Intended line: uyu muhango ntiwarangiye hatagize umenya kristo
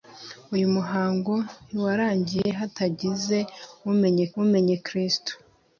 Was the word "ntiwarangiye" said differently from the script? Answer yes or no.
no